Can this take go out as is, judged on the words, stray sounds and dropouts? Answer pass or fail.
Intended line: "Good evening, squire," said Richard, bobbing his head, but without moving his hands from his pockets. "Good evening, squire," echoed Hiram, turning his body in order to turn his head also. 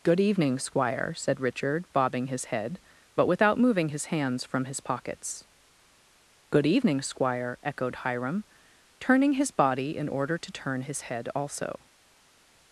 pass